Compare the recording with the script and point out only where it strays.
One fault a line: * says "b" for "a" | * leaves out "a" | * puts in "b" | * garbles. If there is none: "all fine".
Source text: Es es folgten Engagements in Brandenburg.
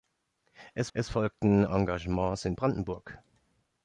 all fine